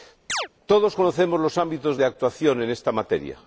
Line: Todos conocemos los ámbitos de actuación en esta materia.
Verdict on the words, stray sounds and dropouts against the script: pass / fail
fail